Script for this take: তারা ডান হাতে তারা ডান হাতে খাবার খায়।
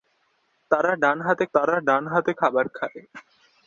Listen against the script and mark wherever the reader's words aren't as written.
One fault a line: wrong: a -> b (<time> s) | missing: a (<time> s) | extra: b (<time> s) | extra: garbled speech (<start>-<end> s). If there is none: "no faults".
no faults